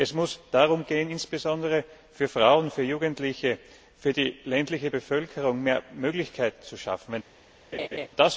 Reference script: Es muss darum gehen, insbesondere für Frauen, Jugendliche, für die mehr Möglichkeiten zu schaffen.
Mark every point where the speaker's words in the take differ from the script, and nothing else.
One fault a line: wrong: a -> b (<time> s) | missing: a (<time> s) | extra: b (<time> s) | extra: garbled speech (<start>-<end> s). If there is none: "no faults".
extra: für (2.7 s)
extra: ländliche Bevölkerung (4.4 s)